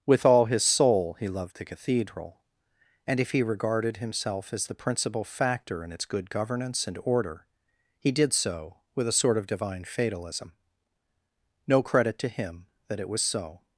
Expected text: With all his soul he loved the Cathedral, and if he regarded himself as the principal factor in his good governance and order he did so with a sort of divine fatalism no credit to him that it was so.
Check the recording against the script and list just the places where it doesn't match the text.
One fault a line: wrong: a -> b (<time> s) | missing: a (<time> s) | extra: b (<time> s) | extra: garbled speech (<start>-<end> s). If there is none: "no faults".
wrong: his -> its (5.9 s)